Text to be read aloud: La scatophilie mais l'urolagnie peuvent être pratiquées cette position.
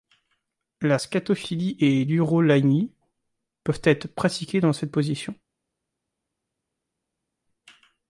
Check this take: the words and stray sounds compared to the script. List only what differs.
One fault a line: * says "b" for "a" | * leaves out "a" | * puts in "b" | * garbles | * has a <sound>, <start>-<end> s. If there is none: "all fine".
* says "et" for "mais"
* puts in "dans"